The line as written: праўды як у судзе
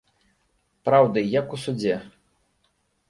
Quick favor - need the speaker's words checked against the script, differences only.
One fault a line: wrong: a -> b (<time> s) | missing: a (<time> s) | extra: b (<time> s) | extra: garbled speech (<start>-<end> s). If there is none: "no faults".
no faults